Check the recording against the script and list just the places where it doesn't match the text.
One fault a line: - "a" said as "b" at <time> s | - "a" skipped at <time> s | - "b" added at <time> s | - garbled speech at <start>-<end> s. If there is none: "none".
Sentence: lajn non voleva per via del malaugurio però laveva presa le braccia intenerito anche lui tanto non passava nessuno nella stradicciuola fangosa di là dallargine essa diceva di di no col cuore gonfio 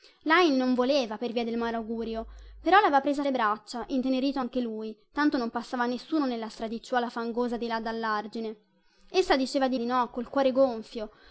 none